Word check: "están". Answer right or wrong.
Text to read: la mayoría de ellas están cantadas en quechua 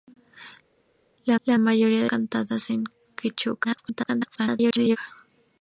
wrong